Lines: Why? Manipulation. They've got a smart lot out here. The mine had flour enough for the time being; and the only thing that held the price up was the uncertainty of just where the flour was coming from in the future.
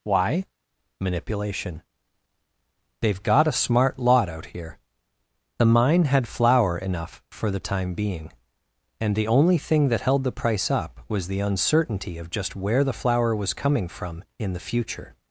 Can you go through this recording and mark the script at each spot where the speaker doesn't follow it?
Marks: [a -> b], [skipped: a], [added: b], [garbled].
Why? Manipulation. They've got a smart lot out here. The mine had flour enough for the time being; and the only thing that held the price up was the uncertainty of just where the flour was coming from in the future.